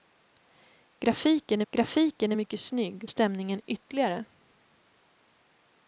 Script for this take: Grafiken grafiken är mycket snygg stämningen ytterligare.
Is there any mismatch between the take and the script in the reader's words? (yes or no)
no